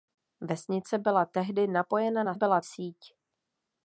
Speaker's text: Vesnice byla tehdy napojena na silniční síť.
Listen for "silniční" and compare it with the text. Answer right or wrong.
wrong